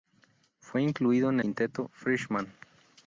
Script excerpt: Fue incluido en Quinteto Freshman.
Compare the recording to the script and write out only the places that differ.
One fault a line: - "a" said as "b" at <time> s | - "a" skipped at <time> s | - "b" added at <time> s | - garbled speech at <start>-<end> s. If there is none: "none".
none